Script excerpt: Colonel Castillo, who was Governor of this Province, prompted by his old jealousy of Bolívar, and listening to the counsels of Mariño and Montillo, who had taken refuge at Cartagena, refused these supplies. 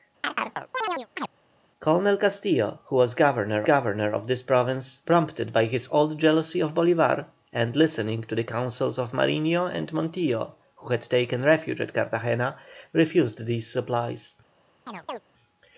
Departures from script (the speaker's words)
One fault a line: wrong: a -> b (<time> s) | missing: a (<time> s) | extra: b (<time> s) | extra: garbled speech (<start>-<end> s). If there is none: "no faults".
extra: Governor (3.6 s)